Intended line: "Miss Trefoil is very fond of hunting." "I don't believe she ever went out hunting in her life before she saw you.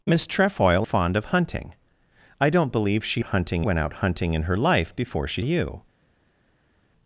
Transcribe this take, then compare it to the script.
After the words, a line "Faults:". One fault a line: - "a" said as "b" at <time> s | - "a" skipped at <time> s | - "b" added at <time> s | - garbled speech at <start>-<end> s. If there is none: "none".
"Miss Trefoil fond of hunting." "I don't believe she hunting went out hunting in her life before she you.
Faults:
- "is very" skipped at 0.9 s
- "ever" said as "hunting" at 3.2 s
- "saw" skipped at 5.4 s